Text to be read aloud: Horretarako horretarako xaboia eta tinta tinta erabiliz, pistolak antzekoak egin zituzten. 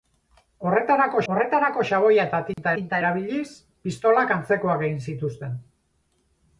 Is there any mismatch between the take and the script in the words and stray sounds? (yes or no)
yes